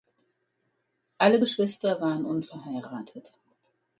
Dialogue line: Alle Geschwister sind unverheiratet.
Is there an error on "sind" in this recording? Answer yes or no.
yes